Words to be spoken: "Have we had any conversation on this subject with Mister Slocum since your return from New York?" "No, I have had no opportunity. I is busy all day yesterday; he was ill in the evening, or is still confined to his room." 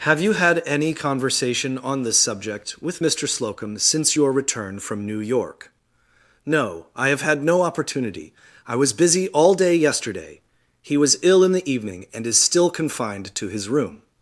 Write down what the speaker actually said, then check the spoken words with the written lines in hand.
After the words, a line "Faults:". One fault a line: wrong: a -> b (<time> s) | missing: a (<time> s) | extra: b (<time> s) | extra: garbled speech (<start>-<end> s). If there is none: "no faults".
"Have you had any conversation on this subject with Mister Slocum since your return from New York?" "No, I have had no opportunity. I was busy all day yesterday; he was ill in the evening, and is still confined to his room."
Faults:
wrong: we -> you (0.2 s)
wrong: is -> was (8.8 s)
wrong: or -> and (12.1 s)